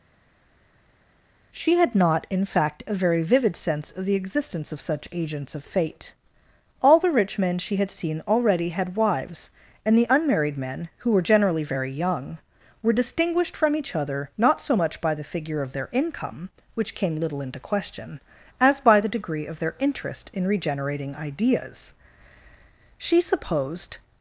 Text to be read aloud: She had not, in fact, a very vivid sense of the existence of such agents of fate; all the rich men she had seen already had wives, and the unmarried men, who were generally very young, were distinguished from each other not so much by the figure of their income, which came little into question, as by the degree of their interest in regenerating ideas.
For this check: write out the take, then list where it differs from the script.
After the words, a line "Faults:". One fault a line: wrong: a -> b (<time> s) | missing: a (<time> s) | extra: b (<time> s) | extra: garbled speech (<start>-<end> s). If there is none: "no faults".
She had not, in fact, a very vivid sense of the existence of such agents of fate; all the rich men she had seen already had wives, and the unmarried men, who were generally very young, were distinguished from each other not so much by the figure of their income, which came little into question, as by the degree of their interest in regenerating ideas. She supposed
Faults:
extra: She supposed (23.0 s)